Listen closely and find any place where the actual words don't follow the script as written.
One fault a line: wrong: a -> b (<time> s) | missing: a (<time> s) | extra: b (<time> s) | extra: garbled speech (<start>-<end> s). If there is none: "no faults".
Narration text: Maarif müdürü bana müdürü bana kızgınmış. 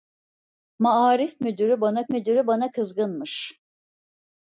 no faults